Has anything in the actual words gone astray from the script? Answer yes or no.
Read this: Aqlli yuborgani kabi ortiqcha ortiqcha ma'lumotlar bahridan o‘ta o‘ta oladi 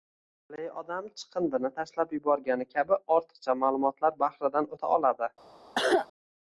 yes